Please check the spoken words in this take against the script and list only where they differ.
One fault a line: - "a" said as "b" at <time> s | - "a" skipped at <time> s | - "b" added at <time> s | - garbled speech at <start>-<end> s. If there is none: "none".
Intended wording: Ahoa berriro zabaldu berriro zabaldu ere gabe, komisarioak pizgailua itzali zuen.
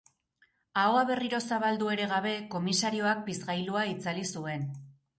- "berriro zabaldu" skipped at 1.9 s